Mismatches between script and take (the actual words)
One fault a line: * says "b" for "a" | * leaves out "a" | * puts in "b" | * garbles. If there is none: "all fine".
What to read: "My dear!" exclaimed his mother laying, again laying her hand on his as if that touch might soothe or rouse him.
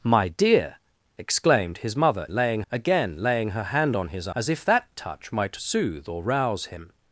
all fine